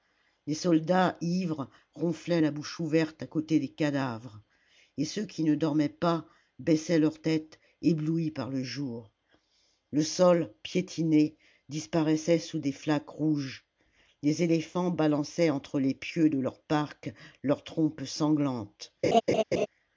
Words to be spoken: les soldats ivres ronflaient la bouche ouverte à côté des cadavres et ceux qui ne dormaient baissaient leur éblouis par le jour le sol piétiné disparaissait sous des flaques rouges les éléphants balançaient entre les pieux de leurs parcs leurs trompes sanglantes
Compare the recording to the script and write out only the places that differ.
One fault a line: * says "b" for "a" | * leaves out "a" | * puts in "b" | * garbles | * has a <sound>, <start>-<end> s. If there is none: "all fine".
* puts in "pas"
* puts in "tête"
* has a laugh, 19.0-19.7 s